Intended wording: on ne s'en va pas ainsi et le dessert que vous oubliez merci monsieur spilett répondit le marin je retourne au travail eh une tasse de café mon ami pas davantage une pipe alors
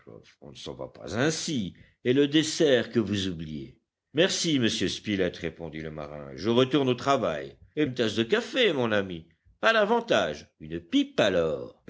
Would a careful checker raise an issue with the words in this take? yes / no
no